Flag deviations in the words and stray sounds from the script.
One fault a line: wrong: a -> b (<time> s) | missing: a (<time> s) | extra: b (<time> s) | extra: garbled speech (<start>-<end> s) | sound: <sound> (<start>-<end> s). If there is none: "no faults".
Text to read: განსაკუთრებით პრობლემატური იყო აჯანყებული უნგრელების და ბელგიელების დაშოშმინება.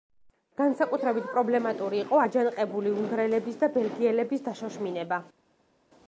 no faults